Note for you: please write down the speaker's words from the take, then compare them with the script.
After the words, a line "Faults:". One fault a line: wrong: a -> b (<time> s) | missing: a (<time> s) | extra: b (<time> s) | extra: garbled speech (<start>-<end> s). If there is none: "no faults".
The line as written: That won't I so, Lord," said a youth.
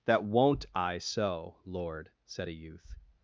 That won't I so, Lord," said a youth.
Faults:
no faults